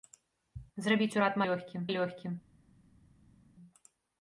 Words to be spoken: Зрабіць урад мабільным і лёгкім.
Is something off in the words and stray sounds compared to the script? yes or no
yes